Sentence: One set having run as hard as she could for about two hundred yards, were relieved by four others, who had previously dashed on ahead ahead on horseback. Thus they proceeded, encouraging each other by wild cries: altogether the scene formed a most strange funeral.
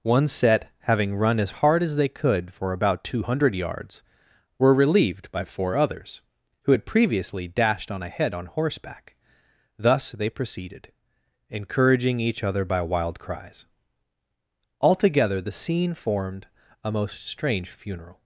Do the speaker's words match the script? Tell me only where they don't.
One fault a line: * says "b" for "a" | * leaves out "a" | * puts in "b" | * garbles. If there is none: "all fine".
* says "they" for "she"
* leaves out "ahead"